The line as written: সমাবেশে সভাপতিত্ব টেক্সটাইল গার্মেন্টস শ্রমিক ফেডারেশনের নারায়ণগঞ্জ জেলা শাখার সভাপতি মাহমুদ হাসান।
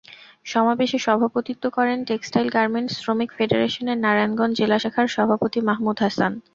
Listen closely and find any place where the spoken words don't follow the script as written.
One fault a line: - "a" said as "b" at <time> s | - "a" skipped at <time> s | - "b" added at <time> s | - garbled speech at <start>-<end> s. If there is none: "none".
- "করেন" added at 1.8 s